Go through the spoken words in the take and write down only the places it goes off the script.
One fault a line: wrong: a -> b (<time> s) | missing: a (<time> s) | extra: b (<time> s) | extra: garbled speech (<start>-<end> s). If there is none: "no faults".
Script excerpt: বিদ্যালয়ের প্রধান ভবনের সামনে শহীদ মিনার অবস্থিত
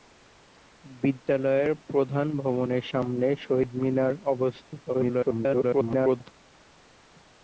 extra: garbled speech (4.9-6.2 s)